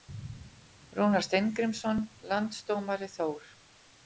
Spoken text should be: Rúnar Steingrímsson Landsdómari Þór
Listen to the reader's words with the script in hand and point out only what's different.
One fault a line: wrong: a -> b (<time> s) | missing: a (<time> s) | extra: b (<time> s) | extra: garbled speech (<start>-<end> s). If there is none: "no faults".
no faults